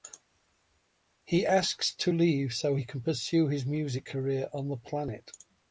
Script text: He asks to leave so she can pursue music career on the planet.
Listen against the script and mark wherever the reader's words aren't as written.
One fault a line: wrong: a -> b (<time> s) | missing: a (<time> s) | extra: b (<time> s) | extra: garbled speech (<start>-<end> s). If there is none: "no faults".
wrong: she -> he (2.7 s)
extra: his (3.5 s)